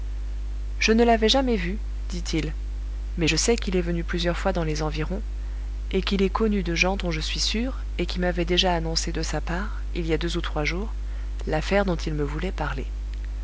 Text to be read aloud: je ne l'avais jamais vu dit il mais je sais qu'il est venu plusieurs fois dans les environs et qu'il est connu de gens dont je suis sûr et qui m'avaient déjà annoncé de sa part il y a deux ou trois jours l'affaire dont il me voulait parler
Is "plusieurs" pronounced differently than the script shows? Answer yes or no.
no